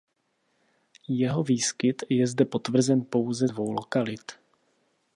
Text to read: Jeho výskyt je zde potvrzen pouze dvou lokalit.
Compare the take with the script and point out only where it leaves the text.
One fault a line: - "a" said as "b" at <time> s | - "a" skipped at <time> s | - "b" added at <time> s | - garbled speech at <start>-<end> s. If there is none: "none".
none